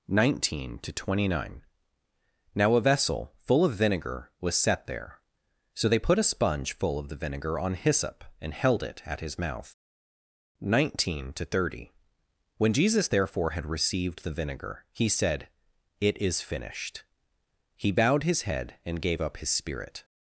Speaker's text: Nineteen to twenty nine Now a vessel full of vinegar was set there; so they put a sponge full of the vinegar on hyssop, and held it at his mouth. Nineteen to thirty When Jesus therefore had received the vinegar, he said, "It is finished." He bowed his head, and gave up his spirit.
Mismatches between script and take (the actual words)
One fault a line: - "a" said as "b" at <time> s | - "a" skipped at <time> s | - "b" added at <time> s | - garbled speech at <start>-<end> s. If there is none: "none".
none